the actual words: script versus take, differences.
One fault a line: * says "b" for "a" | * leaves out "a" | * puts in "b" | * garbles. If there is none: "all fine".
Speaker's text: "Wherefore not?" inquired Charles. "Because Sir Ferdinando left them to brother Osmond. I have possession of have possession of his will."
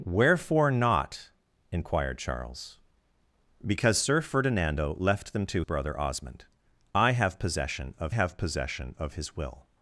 all fine